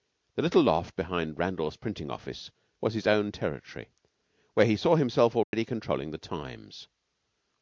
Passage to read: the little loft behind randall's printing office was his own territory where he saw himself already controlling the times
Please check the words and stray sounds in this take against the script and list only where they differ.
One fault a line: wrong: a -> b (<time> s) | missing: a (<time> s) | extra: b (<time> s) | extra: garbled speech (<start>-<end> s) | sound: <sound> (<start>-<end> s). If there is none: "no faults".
sound: dropout (5.4-5.5 s)